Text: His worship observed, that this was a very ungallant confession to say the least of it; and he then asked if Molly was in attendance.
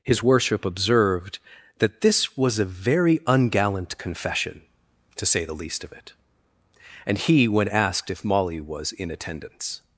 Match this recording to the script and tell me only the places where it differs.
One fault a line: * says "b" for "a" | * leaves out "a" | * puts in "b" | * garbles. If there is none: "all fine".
* says "when" for "then"